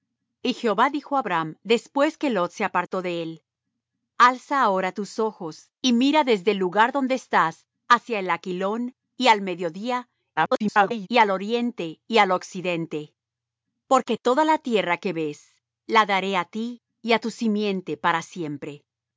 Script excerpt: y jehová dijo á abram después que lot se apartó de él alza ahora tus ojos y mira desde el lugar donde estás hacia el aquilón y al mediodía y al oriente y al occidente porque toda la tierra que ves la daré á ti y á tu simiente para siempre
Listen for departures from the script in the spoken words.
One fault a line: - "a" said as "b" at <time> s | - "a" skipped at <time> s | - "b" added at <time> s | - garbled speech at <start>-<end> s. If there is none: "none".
- garbled speech at 10.4-11.1 s